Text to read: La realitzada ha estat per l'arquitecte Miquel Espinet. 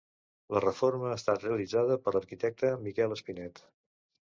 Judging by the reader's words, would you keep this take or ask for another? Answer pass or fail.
fail